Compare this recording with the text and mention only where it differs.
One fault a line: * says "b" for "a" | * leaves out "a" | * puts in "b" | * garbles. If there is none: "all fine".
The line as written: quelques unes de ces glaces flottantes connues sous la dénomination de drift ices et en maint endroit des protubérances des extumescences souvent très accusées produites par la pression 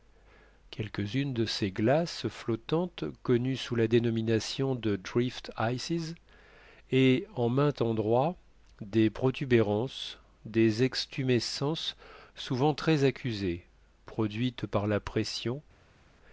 all fine